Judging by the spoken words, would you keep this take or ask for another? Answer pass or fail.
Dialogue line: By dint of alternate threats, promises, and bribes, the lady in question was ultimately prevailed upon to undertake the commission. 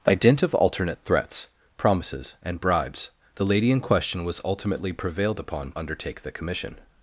fail